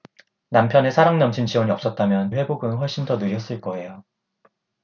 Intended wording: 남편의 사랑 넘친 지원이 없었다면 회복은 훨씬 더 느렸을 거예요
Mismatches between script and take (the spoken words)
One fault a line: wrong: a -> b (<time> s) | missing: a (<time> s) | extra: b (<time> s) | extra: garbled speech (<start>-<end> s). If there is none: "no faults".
no faults